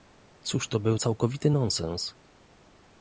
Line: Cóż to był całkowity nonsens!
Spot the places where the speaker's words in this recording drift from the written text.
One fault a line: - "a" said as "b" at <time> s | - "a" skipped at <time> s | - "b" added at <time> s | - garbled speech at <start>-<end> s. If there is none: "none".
none